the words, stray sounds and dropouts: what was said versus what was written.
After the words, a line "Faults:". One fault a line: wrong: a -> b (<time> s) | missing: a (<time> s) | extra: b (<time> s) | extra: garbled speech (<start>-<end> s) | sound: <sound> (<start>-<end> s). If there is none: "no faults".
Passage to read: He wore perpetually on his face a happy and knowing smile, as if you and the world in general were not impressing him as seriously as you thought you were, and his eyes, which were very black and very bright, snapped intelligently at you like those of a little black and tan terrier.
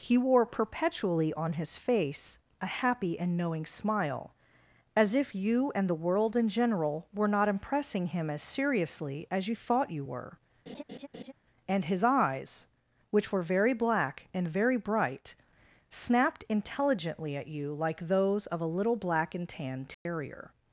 He wore perpetually on his face a happy and knowing smile, as if you and the world in general were not impressing him as seriously as you thought you were, and his eyes, which were very black and very bright, snapped intelligently at you like those of a little black and tan terrier.
Faults:
sound: laugh (10.7-11.3 s)
sound: dropout (19.9-20.1 s)